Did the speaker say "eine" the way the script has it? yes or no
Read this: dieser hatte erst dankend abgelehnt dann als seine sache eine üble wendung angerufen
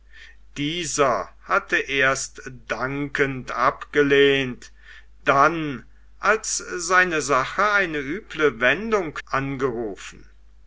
yes